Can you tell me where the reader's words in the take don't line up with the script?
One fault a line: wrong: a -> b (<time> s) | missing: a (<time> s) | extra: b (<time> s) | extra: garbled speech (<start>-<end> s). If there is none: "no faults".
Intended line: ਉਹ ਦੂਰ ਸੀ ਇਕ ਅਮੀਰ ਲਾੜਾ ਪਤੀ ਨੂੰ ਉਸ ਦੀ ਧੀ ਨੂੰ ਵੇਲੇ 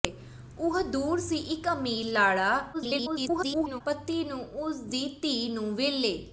extra: garbled speech (2.7-3.8 s)